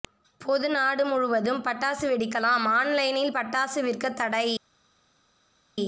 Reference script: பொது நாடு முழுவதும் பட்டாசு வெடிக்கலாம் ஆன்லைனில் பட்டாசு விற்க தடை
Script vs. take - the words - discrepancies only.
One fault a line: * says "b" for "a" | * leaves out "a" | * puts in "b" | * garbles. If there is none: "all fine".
all fine